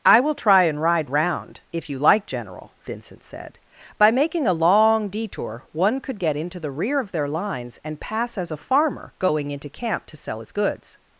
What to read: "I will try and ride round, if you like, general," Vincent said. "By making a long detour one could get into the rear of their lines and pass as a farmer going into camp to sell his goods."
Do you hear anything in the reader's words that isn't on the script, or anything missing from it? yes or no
no